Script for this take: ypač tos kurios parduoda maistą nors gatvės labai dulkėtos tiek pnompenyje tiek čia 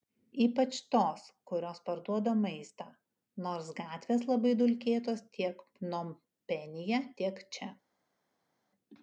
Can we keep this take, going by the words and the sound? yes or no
yes